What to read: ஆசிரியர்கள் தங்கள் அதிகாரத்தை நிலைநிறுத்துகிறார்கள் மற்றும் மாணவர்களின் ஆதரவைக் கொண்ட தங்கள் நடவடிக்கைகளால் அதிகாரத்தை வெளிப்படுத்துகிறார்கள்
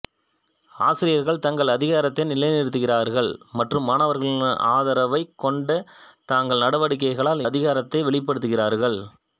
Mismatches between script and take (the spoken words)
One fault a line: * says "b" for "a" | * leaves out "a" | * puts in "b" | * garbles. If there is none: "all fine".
all fine